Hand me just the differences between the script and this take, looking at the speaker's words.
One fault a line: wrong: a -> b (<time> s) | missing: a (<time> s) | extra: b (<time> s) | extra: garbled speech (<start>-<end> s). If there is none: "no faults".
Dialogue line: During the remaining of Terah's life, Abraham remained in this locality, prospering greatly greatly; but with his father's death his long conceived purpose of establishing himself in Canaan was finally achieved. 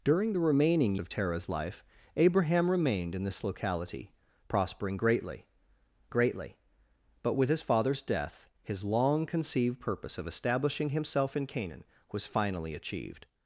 no faults